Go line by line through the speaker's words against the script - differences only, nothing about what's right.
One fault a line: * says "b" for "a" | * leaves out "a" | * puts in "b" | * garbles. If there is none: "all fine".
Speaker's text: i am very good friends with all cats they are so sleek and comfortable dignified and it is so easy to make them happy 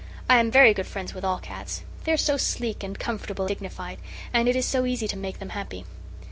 all fine